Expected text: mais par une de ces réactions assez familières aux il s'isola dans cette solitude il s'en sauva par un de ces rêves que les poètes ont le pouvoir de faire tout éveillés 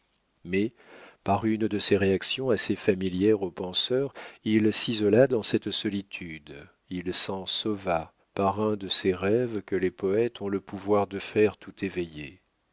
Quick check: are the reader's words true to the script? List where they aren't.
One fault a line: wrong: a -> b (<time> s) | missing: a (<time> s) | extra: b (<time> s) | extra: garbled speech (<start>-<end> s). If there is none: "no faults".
extra: penseurs (3.5 s)